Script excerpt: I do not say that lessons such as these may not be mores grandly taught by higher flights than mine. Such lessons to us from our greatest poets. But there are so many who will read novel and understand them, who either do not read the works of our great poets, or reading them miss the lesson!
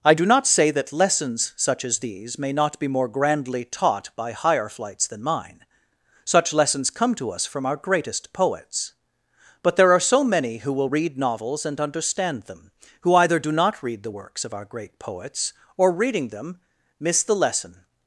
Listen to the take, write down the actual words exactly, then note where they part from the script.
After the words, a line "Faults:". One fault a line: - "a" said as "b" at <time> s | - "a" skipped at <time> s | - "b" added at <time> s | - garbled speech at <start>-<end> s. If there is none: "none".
I do not say that lessons such as these may not be more grandly taught by higher flights than mine. Such lessons come to us from our greatest poets. But there are so many who will read novels and understand them, who either do not read the works of our great poets, or reading them miss the lesson!
Faults:
- "mores" said as "more" at 2.9 s
- "come" added at 6.9 s
- "novel" said as "novels" at 11.2 s